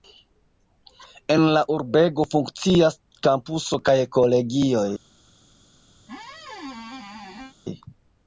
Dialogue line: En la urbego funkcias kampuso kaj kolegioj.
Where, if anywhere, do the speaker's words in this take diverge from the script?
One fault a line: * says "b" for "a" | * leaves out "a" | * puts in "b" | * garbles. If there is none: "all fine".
all fine